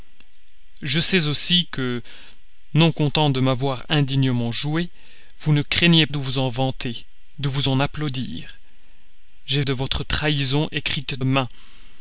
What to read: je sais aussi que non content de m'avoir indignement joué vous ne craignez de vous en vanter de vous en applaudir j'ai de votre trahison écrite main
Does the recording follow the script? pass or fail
pass